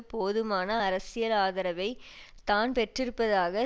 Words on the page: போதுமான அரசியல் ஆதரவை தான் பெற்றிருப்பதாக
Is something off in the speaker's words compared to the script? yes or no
no